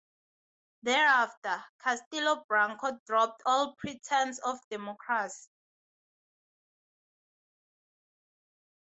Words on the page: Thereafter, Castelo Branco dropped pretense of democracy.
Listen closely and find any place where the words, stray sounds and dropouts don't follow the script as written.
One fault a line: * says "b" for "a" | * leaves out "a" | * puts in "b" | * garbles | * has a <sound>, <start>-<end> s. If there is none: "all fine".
* puts in "all"